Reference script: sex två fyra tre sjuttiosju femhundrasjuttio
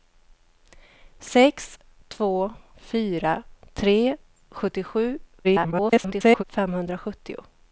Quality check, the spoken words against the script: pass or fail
fail